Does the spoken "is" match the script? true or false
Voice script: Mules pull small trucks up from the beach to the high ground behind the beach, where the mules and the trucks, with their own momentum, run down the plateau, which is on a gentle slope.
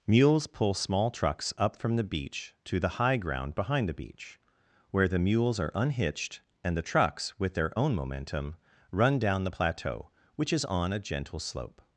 true